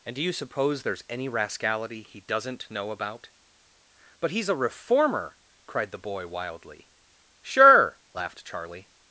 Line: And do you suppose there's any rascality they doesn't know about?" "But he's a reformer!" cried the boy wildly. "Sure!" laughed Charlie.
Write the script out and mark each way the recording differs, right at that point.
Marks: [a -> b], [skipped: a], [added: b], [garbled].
And do you suppose there's any rascality [they -> he] doesn't know about?" "But he's a reformer!" cried the boy wildly. "Sure!" laughed Charlie.